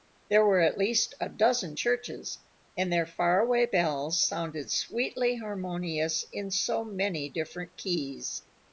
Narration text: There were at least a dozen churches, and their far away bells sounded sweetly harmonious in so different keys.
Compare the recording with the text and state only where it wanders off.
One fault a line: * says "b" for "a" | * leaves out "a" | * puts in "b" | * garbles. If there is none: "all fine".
* puts in "many"